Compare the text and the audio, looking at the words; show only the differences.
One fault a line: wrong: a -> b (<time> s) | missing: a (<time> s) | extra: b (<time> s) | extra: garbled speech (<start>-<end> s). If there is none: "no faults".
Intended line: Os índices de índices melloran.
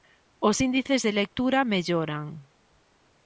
wrong: índices -> lectura (1.2 s)